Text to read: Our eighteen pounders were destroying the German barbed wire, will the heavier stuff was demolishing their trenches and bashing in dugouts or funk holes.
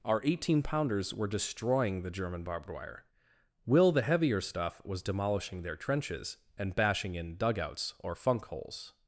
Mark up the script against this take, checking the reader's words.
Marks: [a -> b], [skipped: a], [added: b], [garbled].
Our eighteen pounders were destroying the German barbed wire, will the heavier stuff was demolishing their trenches and bashing in dugouts or funk holes.